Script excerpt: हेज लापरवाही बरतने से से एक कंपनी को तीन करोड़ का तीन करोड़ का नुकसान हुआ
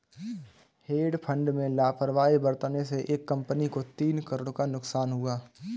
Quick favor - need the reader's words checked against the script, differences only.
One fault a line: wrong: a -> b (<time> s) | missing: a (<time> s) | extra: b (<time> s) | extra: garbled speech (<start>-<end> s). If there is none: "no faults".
extra: फंड में (1.2 s)
missing: से (3.0 s)
missing: तीन करोड़ का (4.7 s)